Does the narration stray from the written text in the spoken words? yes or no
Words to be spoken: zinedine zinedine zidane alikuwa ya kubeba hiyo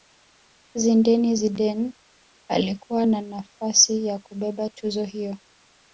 yes